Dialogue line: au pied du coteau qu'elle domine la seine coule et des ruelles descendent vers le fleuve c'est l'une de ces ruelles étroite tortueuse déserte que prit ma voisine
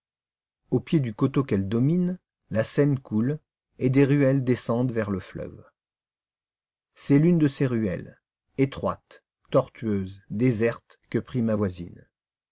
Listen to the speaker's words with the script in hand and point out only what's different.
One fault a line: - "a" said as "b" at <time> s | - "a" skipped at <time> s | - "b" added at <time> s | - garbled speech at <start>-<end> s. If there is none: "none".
none